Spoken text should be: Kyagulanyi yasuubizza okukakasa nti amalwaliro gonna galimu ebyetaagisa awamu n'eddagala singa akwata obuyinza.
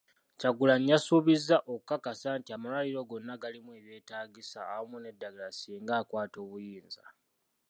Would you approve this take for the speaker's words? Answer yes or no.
yes